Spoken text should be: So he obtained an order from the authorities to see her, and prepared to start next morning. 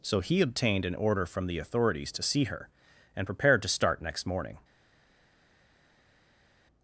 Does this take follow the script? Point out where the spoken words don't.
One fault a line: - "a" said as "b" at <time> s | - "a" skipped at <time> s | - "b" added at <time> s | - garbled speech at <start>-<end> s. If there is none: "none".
none